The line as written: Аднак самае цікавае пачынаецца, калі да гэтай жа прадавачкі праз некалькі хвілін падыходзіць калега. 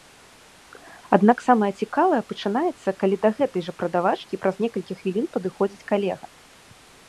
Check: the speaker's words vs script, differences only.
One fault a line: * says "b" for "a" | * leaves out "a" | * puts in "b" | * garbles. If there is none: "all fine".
all fine